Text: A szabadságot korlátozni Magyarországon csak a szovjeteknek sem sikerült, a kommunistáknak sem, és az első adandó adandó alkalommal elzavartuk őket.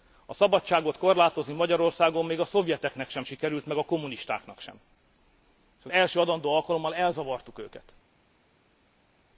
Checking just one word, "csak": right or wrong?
wrong